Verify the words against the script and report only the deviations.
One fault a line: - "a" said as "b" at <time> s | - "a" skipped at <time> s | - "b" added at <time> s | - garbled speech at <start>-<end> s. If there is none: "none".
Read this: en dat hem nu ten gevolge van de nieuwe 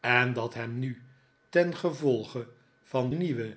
- "de" skipped at 3.1 s